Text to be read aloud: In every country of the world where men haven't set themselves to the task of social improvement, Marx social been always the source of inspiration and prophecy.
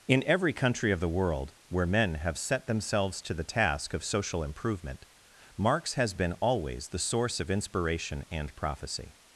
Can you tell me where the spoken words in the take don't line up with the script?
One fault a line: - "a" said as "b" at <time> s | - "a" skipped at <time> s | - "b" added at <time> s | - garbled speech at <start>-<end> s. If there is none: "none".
- "haven't" said as "have" at 2.1 s
- "social" said as "has" at 5.9 s